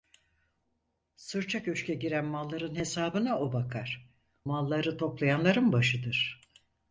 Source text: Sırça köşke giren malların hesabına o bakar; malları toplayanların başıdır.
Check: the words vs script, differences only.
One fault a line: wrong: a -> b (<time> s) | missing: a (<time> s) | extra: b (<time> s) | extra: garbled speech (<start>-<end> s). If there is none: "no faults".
no faults